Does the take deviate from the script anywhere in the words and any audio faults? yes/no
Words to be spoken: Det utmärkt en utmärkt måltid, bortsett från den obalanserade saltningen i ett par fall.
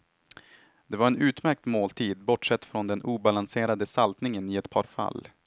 yes